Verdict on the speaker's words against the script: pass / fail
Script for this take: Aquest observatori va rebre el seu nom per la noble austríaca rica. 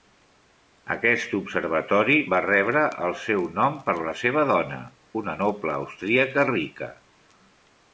fail